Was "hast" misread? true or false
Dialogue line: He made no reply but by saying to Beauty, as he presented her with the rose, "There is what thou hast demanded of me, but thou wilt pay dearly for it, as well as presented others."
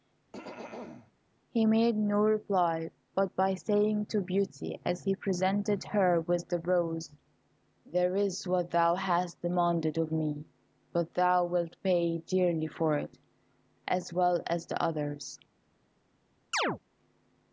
false